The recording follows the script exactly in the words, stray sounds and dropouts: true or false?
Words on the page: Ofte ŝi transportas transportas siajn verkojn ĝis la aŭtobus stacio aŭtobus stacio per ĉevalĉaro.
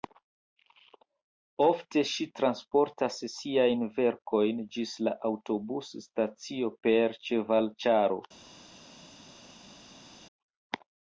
false